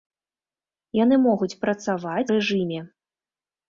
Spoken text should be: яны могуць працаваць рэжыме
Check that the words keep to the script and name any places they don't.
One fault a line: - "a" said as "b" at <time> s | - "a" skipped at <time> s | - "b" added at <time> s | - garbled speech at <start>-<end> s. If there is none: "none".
none